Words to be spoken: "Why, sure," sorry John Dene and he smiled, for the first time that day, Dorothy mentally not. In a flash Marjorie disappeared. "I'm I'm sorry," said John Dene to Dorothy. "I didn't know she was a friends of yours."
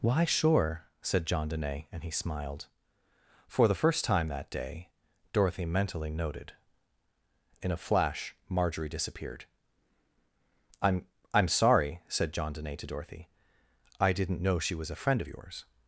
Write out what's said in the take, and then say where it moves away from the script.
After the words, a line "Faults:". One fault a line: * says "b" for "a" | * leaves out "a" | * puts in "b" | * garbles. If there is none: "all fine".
"Why, sure," said John Dene and he smiled, for the first time that day, Dorothy mentally noted. In a flash Marjorie disappeared. "I'm I'm sorry," said John Dene to Dorothy. "I didn't know she was a friend of yours."
Faults:
* says "said" for "sorry"
* says "noted" for "not"
* says "friend" for "friends"